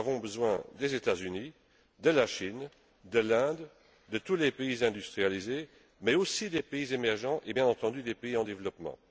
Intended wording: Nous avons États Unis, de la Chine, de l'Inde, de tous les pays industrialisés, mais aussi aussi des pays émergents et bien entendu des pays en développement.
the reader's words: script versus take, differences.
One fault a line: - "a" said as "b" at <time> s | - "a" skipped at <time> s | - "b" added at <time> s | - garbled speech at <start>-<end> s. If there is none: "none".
- "besoin des" added at 0.2 s
- "aussi" skipped at 6.5 s